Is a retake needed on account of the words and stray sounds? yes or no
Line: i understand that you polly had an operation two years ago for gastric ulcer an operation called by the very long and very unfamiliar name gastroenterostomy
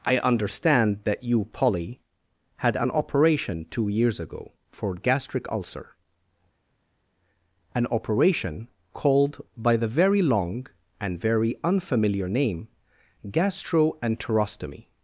no